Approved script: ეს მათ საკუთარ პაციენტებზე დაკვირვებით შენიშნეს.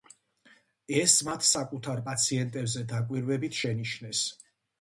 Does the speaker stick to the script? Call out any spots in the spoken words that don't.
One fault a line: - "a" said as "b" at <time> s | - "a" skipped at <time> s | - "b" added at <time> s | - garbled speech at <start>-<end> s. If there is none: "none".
none